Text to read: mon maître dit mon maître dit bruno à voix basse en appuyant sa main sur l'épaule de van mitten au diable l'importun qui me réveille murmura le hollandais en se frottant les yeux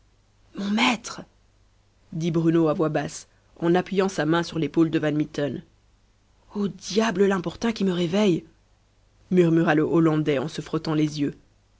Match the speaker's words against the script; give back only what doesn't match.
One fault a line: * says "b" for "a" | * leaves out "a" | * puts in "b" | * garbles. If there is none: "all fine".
* leaves out "mon maître dit"